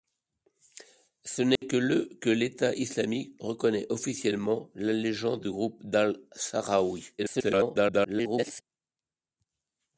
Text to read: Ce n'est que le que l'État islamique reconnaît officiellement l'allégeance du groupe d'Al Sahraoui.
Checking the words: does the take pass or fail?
fail